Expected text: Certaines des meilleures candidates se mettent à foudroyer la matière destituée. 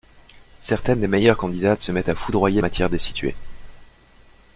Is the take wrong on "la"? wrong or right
wrong